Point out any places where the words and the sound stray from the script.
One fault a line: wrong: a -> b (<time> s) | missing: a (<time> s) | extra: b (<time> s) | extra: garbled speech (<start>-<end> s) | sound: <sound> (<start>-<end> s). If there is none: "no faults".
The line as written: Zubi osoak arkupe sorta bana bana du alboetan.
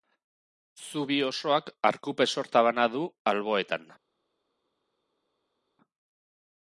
missing: bana (2.9 s)